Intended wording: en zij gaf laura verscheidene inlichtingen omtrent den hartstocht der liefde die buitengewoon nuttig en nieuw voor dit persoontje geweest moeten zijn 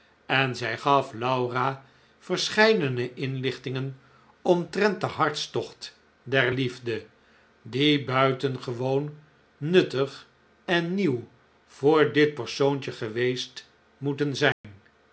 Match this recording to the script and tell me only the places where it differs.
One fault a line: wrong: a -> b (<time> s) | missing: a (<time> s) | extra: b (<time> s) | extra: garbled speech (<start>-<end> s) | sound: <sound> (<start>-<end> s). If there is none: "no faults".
sound: dropout (14.5-14.6 s)